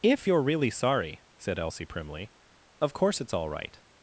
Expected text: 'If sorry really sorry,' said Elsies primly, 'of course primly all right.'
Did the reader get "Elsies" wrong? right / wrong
wrong